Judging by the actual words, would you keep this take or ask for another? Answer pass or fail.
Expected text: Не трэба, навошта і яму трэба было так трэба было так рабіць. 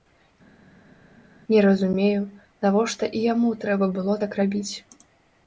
fail